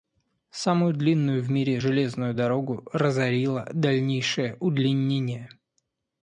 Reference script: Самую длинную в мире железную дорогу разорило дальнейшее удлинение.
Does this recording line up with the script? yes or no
yes